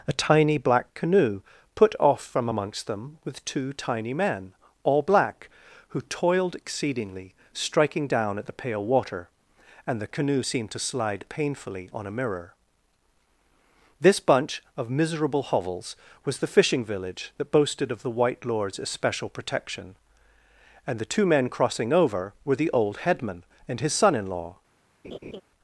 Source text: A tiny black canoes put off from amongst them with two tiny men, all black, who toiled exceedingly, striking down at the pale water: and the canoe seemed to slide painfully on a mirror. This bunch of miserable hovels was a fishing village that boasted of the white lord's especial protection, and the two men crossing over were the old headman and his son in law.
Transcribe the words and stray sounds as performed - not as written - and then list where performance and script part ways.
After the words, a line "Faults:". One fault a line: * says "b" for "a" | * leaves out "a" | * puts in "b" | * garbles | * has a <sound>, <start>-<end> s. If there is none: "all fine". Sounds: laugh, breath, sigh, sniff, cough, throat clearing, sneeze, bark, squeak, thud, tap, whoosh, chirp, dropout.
A tiny black canoe put off from amongst them with two tiny men, all black, who toiled exceedingly, striking down at the pale water: and the canoe seemed to slide painfully on a mirror. This bunch of miserable hovels was the fishing village that boasted of the white lord's especial protection, and the two men crossing over were the old headman and his son in law.
Faults:
* says "canoe" for "canoes"
* says "the" for "a"
* has a laugh, 25.0-25.4 s